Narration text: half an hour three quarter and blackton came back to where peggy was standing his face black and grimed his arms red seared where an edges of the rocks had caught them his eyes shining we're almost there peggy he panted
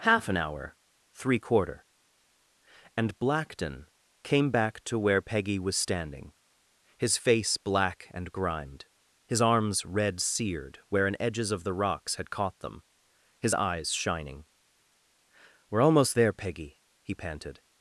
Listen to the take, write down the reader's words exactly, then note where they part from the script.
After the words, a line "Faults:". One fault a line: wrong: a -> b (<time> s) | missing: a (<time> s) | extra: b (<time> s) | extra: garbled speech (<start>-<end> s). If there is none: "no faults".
half an hour three quarter and blackton came back to where peggy was standing his face black and grimed his arms red seared where an edges of the rocks had caught them his eyes shining we're almost there peggy he panted
Faults:
no faults